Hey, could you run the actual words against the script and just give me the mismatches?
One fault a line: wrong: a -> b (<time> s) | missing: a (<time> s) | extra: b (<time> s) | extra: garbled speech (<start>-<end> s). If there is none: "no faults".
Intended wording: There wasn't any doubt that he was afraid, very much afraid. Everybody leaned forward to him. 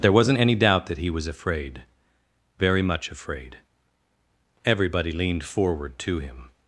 no faults